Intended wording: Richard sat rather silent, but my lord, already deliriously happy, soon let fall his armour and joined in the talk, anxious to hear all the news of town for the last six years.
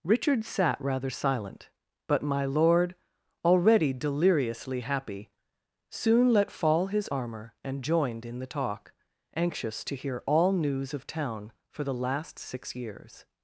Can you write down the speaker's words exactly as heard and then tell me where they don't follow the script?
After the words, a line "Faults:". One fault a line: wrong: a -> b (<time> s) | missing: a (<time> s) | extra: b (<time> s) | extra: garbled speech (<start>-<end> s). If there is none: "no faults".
Richard sat rather silent, but my lord, already deliriously happy, soon let fall his armour and joined in the talk, anxious to hear all news of town for the last six years.
Faults:
missing: the (10.5 s)